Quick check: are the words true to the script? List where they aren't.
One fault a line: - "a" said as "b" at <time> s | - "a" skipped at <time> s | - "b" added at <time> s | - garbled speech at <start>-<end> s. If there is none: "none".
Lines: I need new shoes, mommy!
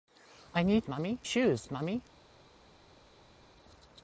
- "new" said as "mommy" at 0.9 s